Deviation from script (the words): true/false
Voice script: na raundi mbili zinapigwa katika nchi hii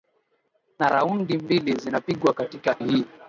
true